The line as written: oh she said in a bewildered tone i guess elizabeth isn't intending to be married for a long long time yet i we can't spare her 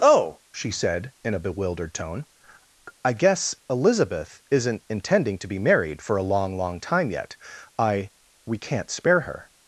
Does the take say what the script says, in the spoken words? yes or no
yes